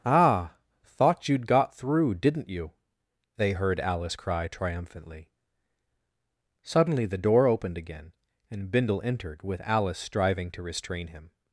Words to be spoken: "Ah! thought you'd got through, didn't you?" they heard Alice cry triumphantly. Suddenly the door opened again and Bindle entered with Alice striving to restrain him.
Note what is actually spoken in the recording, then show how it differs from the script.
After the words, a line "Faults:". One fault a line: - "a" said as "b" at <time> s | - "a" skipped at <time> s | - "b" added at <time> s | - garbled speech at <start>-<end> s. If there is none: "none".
"Ah! thought you'd got through, didn't you?" they heard Alice cry triumphantly. Suddenly the door opened again and Bindle entered with Alice striving to restrain him.
Faults:
none